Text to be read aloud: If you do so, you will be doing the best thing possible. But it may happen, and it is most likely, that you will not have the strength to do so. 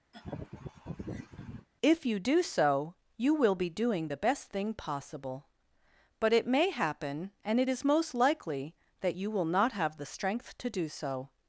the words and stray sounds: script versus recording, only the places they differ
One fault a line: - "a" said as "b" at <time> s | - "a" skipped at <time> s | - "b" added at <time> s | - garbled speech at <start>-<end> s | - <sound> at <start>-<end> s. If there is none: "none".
- laugh at 0.1-1.7 s